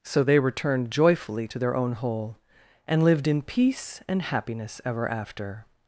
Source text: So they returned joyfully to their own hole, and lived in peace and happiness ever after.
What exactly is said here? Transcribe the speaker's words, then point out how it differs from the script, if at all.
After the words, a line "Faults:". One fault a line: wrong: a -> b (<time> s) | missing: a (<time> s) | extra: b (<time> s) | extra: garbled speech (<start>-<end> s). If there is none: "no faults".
So they returned joyfully to their own hole, and lived in peace and happiness ever after.
Faults:
no faults